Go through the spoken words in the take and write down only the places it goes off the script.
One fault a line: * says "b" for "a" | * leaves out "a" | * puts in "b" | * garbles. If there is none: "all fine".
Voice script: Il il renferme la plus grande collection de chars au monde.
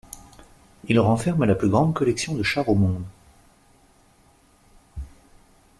* leaves out "il"